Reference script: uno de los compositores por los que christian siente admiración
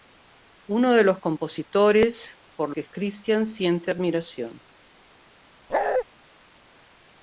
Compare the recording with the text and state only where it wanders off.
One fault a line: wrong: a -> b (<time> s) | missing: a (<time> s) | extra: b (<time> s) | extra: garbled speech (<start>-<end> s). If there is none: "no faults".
missing: los (2.7 s)